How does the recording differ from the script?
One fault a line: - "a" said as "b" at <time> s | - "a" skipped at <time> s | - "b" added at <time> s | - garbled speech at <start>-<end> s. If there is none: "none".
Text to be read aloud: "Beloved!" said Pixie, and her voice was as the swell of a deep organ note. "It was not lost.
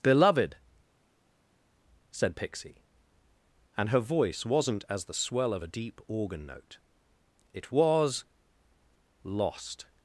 - "was" said as "wasn't" at 4.5 s
- "not" skipped at 8.2 s